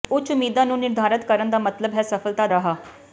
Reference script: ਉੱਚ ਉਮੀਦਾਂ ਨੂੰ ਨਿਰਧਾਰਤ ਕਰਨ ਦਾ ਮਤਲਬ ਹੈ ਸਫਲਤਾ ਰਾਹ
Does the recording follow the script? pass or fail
pass